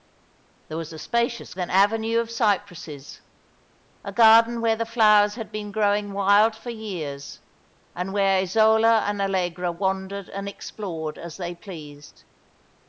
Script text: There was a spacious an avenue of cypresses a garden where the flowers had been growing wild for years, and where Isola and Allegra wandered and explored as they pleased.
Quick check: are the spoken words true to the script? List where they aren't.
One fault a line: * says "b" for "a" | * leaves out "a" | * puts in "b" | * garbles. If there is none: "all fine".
all fine